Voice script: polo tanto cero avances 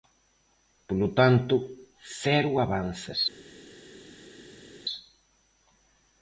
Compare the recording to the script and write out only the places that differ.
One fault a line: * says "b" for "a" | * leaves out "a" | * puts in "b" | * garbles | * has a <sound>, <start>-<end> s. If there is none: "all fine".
all fine